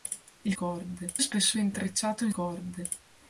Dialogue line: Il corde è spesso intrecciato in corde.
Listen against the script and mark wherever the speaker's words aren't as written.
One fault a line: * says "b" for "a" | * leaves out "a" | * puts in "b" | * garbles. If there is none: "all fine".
all fine